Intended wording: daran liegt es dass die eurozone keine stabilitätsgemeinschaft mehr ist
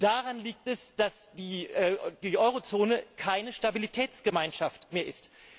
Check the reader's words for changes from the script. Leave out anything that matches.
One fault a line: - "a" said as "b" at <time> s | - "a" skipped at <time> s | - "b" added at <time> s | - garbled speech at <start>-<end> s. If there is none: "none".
none